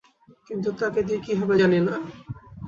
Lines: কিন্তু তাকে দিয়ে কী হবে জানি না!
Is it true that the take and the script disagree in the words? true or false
false